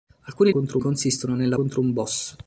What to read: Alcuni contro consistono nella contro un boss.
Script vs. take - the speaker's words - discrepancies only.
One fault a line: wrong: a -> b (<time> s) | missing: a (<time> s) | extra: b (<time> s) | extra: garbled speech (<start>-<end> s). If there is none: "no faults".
no faults